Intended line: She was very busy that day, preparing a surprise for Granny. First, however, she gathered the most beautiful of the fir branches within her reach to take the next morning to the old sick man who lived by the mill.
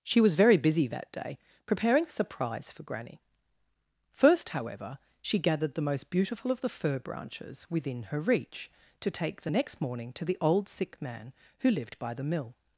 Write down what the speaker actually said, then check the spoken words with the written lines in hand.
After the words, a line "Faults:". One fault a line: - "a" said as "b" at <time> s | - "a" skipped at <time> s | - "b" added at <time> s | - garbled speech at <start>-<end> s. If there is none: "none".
She was very busy that day, preparing a surprise for Granny. First, however, she gathered the most beautiful of the fir branches within her reach to take the next morning to the old sick man who lived by the mill.
Faults:
none